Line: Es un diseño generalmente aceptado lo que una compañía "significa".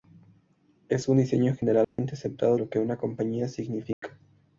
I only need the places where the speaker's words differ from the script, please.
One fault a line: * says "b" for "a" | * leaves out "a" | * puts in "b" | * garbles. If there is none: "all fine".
all fine